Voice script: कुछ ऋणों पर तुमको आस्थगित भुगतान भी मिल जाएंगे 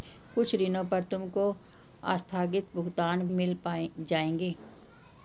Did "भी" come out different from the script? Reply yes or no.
yes